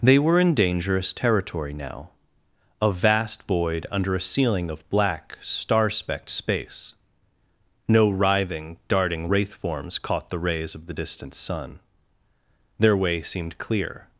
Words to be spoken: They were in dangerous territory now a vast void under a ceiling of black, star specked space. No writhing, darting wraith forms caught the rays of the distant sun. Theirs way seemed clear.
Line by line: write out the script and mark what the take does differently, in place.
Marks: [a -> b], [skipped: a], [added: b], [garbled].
They were in dangerous territory now a vast void under a ceiling of black, star specked space. No writhing, darting wraith forms caught the rays of the distant sun. [Theirs -> Their] way seemed clear.